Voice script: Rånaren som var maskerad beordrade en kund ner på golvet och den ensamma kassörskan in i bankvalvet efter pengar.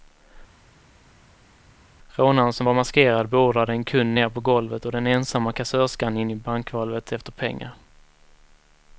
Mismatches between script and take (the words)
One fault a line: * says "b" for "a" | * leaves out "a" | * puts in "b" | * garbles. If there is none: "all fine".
all fine